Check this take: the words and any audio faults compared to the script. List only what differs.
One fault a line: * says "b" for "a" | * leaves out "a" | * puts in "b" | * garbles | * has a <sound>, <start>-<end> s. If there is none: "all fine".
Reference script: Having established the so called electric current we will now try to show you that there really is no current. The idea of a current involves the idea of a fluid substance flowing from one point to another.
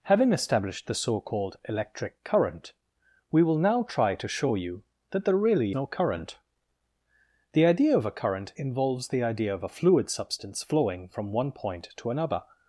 * leaves out "is"